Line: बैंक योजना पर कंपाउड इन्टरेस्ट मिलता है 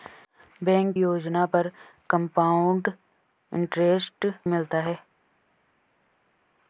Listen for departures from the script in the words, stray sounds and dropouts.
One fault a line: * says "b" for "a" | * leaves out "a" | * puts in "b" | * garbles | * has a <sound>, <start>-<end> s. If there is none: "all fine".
all fine